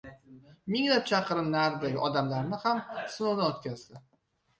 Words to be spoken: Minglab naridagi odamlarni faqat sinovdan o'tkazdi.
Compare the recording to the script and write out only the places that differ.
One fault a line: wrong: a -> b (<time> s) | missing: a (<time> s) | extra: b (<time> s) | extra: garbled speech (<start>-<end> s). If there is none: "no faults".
extra: chaqirim (1.1 s)
wrong: faqat -> ham (2.6 s)